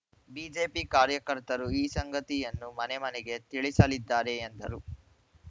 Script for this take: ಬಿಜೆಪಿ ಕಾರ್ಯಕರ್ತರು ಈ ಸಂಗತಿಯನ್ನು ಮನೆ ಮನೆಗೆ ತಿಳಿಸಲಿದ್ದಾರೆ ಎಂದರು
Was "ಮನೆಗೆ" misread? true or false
false